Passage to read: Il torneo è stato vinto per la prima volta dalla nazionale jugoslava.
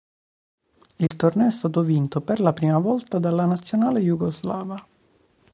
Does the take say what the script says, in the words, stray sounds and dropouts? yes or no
no